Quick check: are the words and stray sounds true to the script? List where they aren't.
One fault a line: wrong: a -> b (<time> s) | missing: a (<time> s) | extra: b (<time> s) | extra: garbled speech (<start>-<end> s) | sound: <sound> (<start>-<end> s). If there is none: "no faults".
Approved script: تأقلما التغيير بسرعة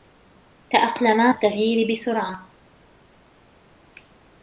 no faults